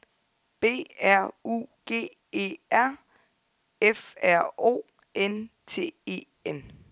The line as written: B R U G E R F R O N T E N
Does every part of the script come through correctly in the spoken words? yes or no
yes